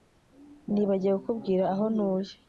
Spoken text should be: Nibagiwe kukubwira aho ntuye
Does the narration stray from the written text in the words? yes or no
no